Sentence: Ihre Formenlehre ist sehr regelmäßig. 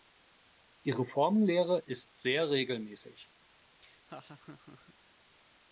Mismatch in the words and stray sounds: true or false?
true